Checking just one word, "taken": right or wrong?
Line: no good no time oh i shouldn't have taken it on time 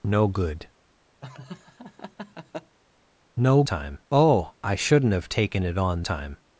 right